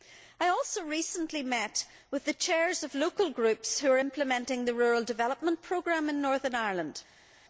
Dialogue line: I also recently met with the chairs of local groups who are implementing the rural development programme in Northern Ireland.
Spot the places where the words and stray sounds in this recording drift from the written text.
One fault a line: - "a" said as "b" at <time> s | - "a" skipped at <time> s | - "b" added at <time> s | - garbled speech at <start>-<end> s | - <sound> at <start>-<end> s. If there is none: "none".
none